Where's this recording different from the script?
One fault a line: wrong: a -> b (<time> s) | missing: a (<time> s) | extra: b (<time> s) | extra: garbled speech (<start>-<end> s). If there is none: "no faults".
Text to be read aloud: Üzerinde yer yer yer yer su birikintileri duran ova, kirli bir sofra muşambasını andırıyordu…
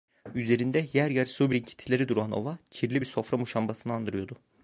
missing: yer yer (1.3 s)